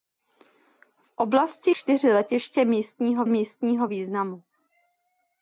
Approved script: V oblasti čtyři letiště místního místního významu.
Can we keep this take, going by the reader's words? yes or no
yes